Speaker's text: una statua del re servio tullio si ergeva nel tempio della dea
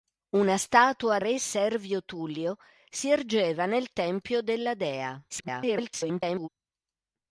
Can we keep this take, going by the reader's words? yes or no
no